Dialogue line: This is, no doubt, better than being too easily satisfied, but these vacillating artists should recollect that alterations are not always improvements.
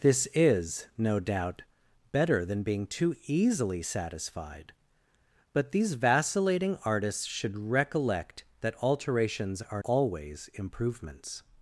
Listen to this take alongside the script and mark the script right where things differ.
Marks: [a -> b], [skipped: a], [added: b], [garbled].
This is, no doubt, better than being too easily satisfied, but these vacillating artists should recollect that alterations are [skipped: not] always improvements.